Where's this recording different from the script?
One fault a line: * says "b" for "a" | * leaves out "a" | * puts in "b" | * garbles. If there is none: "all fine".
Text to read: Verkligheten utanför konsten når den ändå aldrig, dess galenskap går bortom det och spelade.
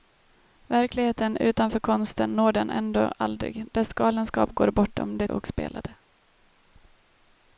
all fine